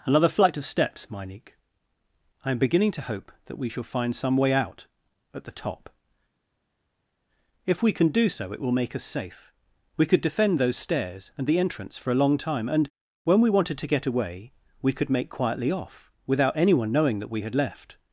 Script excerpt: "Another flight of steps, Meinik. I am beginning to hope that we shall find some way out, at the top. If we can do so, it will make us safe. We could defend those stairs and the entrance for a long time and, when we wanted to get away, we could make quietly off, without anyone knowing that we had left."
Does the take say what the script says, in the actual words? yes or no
yes